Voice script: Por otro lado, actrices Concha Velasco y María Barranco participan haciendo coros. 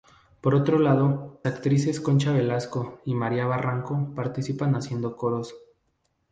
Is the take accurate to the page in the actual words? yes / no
yes